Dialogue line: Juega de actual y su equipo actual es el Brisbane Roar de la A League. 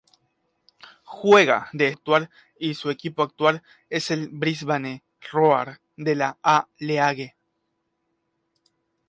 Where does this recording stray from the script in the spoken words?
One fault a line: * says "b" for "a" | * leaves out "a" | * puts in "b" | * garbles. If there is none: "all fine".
all fine